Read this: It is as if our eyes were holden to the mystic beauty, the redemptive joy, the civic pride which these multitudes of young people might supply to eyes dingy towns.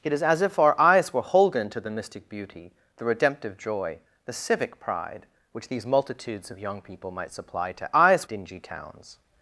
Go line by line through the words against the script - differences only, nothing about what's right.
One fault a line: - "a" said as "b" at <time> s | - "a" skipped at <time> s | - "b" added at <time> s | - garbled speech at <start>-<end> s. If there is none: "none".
none